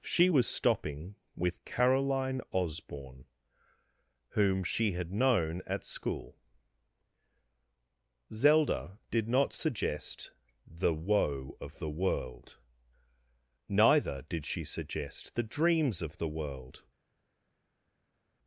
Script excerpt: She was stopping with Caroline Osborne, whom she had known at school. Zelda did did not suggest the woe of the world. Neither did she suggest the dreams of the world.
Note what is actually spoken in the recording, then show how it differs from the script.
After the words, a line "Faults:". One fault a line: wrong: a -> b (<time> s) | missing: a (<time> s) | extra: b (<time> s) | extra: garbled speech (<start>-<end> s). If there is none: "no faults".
She was stopping with Caroline Osborne, whom she had known at school. Zelda did not suggest the woe of the world. Neither did she suggest the dreams of the world.
Faults:
missing: did (9.3 s)